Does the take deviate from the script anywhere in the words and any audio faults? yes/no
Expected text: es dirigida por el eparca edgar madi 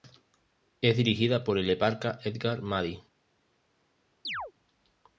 yes